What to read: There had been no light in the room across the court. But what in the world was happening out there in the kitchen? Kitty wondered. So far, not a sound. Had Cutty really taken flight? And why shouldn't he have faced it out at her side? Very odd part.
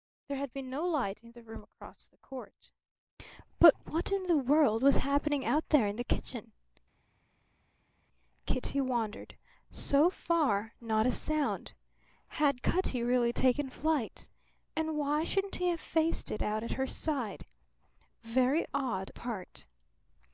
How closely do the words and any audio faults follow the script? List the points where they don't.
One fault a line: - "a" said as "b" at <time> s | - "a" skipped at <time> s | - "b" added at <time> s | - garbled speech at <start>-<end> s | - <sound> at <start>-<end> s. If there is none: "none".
none